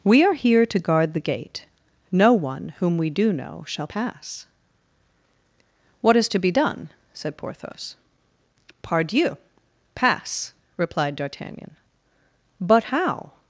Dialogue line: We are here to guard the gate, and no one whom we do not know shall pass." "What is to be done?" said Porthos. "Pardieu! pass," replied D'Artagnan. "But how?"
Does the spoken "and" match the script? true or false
false